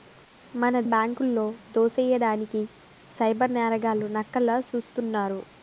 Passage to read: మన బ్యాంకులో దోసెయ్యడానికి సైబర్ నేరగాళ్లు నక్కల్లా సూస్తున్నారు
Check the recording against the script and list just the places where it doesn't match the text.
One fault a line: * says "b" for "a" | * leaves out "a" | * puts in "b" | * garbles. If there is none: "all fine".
all fine